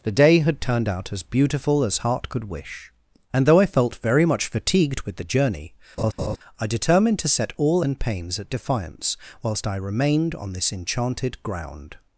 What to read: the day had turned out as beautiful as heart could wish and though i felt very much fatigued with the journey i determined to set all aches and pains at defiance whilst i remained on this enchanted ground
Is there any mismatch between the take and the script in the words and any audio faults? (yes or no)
yes